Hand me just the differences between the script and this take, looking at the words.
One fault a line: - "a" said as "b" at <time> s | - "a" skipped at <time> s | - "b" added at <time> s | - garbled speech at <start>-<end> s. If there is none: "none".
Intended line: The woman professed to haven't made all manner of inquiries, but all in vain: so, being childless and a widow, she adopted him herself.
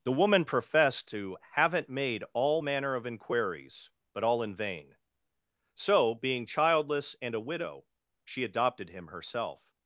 none